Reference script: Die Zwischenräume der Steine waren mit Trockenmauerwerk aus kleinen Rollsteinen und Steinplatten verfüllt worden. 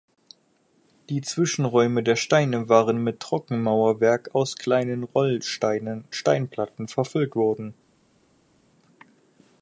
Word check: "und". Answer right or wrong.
wrong